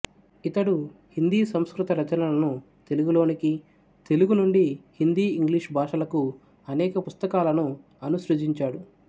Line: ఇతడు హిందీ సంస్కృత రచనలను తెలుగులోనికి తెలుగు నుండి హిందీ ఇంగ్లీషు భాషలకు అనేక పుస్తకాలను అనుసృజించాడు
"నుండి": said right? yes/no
yes